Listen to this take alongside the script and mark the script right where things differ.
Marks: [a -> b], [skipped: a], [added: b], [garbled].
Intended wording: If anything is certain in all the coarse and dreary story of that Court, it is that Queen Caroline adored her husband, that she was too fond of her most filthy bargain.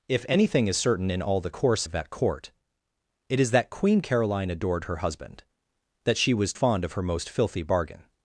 If anything is certain in all the coarse [skipped: and dreary story] of that Court, it is that Queen Caroline adored her husband, that she was [skipped: too] fond of her most filthy bargain.